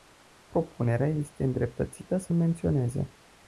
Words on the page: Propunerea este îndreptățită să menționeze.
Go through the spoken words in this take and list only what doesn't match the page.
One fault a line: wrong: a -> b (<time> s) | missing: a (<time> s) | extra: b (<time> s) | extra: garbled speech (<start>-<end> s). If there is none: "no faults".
no faults